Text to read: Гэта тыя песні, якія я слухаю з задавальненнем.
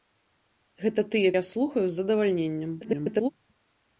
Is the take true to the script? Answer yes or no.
no